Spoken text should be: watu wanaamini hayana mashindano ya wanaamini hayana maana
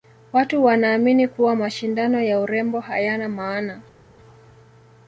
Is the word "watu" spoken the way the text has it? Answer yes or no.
yes